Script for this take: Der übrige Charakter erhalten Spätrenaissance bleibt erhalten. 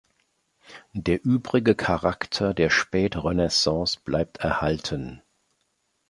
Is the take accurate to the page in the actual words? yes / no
no